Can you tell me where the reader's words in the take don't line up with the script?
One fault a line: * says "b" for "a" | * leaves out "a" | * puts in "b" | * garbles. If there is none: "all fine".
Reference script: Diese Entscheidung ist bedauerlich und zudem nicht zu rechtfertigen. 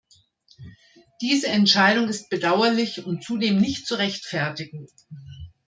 all fine